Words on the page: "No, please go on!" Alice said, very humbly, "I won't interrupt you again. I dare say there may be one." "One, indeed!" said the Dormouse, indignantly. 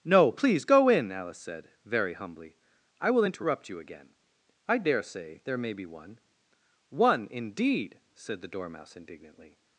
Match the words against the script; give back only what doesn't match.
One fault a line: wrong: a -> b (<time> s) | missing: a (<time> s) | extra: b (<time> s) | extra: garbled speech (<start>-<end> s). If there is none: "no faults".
wrong: on -> in (0.9 s)
wrong: won't -> will (3.1 s)